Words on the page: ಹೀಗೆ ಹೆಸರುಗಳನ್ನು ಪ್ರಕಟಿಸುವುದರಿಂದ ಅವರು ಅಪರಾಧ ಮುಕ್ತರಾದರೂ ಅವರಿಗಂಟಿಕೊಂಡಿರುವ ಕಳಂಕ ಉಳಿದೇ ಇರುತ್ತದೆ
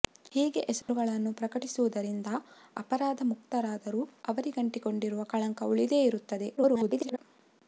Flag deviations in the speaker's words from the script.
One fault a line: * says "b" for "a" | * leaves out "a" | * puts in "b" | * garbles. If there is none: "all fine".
* leaves out "ಅವರು"
* garbles